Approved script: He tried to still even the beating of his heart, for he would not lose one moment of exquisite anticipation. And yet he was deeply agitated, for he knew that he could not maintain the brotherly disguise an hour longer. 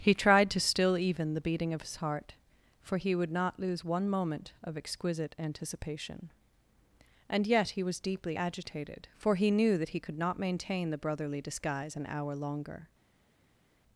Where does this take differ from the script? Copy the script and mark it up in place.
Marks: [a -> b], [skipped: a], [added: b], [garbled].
He tried to still even the beating of his heart, for he would not lose one moment of exquisite anticipation. And yet he was deeply agitated, for he knew that he could not maintain the brotherly disguise an hour longer.